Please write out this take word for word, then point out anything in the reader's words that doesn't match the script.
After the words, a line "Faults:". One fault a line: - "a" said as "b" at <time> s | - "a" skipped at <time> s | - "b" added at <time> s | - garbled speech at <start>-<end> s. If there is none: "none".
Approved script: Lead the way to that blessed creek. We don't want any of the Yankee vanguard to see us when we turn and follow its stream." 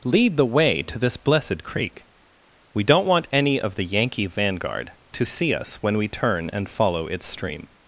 Lead the way to this blessed creek. We don't want any of the Yankee vanguard to see us when we turn and follow its stream."
Faults:
- "that" said as "this" at 1.0 s